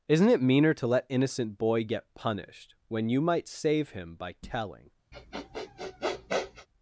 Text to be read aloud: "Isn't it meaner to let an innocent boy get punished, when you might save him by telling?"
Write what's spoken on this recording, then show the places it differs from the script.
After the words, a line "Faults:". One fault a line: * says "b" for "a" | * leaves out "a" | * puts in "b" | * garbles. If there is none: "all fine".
"Isn't it meaner to let innocent boy get punished, when you might save him by telling?"
Faults:
* leaves out "an"